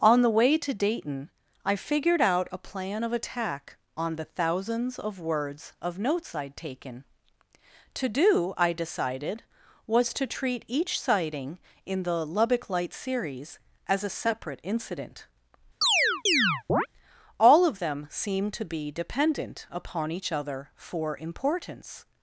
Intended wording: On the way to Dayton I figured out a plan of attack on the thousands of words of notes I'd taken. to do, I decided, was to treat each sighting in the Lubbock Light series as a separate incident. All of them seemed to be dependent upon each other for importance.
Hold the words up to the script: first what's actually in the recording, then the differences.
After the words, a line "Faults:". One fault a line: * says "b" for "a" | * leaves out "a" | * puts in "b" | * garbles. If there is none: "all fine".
On the way to Dayton I figured out a plan of attack on the thousands of words of notes I'd taken. to do, I decided, was to treat each sighting in the Lubbock Light series as a separate incident. All of them seemed to be dependent upon each other for importance.
Faults:
all fine